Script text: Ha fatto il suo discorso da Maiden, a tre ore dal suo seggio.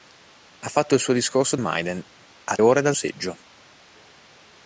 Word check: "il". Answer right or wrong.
right